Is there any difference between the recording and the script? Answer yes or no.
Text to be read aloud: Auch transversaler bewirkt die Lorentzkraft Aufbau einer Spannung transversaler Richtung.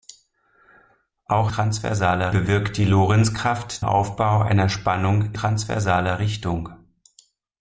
no